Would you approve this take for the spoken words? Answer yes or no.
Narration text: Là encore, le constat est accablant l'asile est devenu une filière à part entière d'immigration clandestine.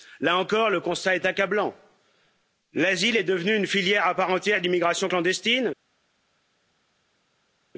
yes